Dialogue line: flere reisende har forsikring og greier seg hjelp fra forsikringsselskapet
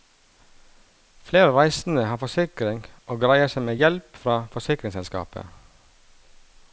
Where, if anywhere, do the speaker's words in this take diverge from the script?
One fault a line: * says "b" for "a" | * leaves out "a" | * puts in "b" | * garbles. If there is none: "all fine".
* puts in "med"